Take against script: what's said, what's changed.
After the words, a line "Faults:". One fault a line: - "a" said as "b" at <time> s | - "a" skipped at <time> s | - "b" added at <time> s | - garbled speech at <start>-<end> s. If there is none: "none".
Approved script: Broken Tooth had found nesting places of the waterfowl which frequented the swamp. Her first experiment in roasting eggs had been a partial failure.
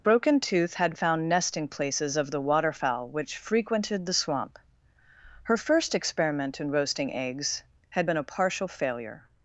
Broken Tooth had found nesting places of the waterfowl which frequented the swamp. Her first experiment in roasting eggs had been a partial failure.
Faults:
none